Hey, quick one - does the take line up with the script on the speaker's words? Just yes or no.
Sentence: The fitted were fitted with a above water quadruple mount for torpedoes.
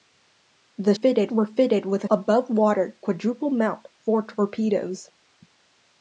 yes